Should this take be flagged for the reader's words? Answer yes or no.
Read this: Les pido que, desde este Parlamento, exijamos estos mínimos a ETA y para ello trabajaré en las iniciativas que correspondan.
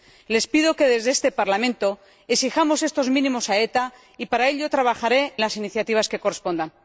yes